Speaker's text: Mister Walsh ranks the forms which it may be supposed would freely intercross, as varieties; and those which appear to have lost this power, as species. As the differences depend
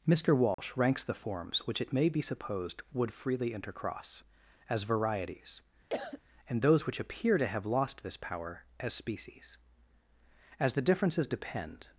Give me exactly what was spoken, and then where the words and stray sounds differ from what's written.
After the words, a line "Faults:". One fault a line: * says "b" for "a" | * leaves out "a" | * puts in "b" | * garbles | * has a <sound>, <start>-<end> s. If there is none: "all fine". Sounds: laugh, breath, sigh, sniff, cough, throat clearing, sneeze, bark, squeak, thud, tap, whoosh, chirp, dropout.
Mister Walsh ranks the forms which it may be supposed would freely intercross, as varieties; and those which appear to have lost this power, as species. As the differences depend
Faults:
* has a dropout, 0.5-0.6 s
* has a cough, 5.9-6.2 s